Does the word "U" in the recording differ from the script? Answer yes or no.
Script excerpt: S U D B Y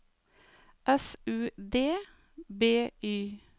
no